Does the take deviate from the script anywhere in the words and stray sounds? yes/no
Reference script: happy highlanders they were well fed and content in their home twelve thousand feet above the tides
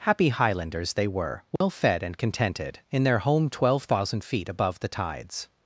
yes